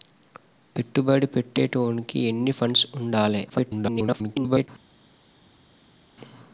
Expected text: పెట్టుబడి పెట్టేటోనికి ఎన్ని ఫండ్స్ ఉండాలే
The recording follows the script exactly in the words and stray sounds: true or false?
false